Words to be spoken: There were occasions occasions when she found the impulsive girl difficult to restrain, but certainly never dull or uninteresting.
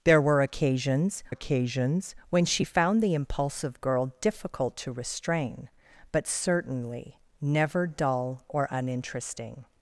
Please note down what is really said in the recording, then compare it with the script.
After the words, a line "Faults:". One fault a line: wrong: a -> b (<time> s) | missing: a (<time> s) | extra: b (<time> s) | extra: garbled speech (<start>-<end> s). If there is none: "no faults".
There were occasions occasions when she found the impulsive girl difficult to restrain, but certainly never dull or uninteresting.
Faults:
no faults